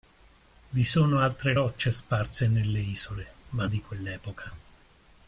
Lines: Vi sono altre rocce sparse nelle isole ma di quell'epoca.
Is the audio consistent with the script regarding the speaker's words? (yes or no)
yes